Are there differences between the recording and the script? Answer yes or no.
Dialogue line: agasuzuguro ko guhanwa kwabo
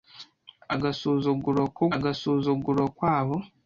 yes